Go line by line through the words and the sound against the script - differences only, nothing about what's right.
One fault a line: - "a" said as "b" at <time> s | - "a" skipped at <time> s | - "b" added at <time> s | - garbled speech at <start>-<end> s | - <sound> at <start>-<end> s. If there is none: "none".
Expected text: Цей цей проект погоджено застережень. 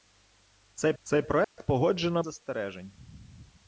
- dropout at 1.4-1.6 s